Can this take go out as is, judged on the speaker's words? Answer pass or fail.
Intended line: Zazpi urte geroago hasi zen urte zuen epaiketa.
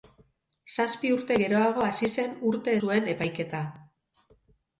pass